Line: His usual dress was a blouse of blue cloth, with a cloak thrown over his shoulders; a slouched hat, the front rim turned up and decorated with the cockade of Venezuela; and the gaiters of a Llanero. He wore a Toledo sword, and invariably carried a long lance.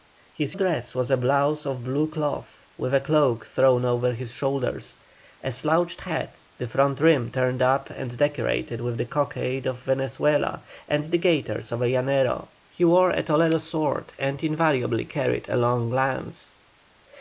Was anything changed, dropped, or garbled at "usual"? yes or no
yes